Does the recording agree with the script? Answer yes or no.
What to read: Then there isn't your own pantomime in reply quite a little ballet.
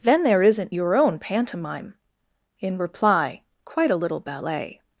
yes